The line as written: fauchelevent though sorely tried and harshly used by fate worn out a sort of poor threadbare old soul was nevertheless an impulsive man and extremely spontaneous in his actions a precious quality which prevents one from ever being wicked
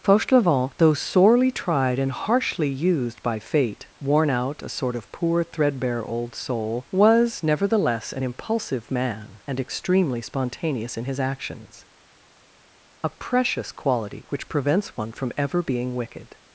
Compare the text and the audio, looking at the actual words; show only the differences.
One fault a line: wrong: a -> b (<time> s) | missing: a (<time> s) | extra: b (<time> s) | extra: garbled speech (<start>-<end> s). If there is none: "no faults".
no faults